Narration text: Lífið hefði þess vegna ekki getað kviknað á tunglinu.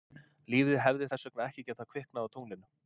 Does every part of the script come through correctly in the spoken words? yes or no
yes